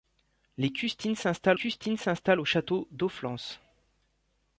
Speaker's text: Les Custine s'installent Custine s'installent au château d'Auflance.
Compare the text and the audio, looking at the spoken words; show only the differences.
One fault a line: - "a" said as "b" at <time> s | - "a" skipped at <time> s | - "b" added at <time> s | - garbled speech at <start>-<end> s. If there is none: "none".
none